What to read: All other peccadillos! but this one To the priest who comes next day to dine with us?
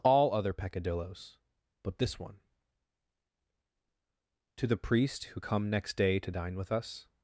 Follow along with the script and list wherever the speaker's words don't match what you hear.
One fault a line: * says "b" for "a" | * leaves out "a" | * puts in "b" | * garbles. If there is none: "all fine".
* says "come" for "comes"